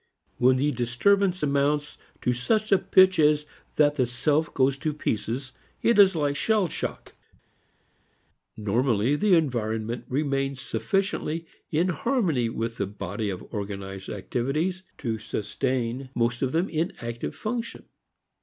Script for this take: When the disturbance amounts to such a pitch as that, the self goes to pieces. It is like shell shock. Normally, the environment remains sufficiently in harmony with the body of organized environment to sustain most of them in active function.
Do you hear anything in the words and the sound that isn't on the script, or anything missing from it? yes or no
yes